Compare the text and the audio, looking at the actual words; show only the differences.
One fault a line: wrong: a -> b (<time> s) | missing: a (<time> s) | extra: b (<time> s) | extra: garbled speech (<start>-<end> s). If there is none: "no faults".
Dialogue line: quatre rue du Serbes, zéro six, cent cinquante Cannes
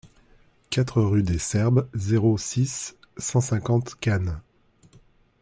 wrong: du -> des (1.2 s)